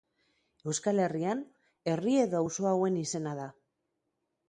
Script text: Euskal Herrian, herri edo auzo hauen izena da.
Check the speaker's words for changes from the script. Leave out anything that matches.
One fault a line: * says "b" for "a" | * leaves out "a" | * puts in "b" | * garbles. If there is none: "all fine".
all fine